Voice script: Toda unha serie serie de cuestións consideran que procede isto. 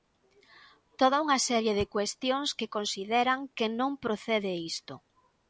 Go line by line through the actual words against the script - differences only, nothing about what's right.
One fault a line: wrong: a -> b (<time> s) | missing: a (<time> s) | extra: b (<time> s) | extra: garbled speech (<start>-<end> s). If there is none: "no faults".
missing: serie (1.7 s)
extra: que (2.6 s)
extra: non (3.8 s)